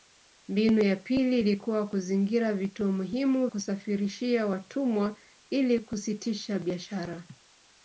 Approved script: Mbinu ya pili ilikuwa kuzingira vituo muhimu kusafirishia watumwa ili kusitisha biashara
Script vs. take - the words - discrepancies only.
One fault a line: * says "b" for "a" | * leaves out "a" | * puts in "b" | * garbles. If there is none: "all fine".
all fine